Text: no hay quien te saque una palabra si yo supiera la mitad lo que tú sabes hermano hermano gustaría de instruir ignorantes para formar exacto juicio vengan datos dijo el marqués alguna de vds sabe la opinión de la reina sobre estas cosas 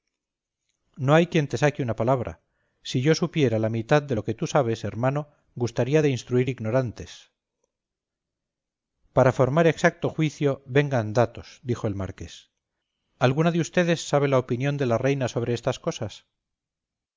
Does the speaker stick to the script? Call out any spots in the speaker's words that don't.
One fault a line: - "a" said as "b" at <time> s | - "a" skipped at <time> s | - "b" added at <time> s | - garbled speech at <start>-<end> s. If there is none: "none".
- "de" added at 4.0 s
- "hermano" skipped at 5.3 s